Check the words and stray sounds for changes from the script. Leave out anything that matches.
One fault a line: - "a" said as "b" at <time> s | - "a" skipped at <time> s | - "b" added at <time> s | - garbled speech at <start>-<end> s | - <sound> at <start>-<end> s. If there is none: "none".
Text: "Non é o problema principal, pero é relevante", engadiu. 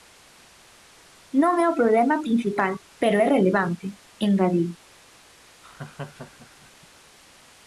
- laugh at 5.6-6.7 s